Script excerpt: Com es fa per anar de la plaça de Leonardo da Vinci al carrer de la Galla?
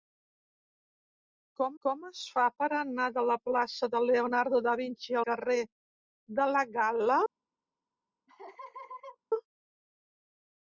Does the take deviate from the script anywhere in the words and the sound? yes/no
yes